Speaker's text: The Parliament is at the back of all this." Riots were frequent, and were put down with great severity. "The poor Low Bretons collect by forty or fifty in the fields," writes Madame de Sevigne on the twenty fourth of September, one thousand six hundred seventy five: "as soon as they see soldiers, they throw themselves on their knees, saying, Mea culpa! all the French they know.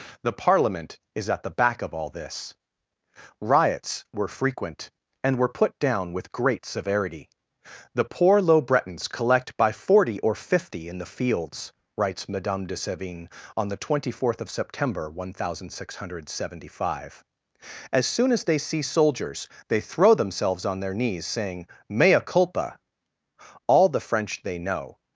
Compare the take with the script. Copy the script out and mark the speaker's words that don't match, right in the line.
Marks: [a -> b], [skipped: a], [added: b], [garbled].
The Parliament is at the back of all this." Riots were frequent, and were put down with great severity. "The poor Low Bretons collect by forty or fifty in the fields," writes Madame de Sevigne on the twenty fourth of September, one thousand six hundred seventy five: "as soon as they see soldiers, they throw themselves on their knees, saying, Mea culpa! all the French they know.